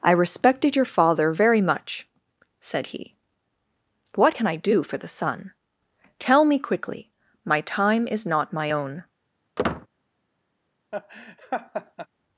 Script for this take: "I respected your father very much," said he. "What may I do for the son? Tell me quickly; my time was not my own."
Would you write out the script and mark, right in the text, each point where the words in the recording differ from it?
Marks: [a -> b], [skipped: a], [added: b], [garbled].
"I respected your father very much," said he. "What [may -> can] I do for the son? Tell me quickly; my time [was -> is] not my own."